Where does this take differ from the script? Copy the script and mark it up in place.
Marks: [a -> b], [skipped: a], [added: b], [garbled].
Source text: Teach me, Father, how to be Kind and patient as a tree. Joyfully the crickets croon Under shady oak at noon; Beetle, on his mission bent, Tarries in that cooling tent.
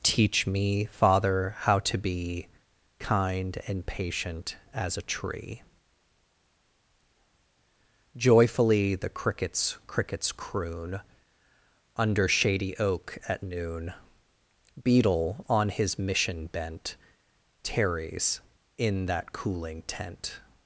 Teach me, Father, how to be Kind and patient as a tree. Joyfully the crickets [added: crickets] croon Under shady oak at noon; Beetle, on his mission bent, Tarries in that cooling tent.